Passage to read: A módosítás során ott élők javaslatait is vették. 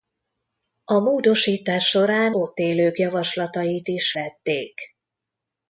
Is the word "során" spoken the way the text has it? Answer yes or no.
yes